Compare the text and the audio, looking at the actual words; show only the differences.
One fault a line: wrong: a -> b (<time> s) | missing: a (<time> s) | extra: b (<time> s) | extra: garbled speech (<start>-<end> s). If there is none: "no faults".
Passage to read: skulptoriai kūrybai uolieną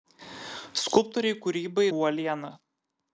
no faults